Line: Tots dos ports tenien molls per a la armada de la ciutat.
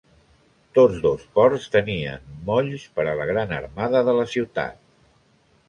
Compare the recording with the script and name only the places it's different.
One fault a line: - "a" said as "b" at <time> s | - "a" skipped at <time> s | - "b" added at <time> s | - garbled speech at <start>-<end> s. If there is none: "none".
- "gran" added at 3.3 s